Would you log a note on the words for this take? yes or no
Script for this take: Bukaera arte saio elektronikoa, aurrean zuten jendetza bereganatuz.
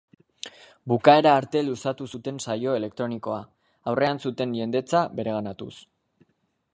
yes